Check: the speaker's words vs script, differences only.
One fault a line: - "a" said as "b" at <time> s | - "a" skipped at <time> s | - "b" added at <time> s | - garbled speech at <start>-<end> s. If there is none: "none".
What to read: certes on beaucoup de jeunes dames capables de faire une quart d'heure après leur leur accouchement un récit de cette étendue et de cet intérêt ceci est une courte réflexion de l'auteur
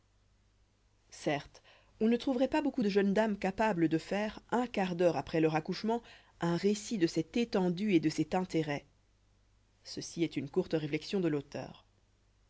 - "ne trouverait pas" added at 2.1 s
- "une" said as "un" at 4.5 s
- "leur" skipped at 5.6 s